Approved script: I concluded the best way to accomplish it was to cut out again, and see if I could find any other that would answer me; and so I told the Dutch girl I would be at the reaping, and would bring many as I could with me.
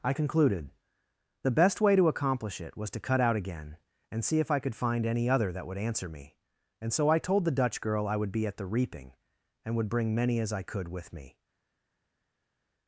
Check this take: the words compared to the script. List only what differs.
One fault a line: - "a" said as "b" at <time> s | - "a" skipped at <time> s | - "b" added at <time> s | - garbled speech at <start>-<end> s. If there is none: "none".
none